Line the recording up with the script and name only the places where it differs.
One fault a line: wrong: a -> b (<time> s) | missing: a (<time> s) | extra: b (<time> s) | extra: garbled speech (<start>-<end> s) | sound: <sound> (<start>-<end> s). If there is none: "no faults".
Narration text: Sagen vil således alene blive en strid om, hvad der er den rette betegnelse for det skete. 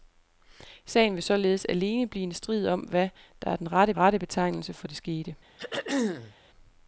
extra: rette (4.0 s)
sound: throat clearing (5.6-6.3 s)